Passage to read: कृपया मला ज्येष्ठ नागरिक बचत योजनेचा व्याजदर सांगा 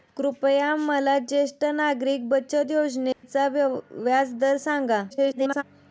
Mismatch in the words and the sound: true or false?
true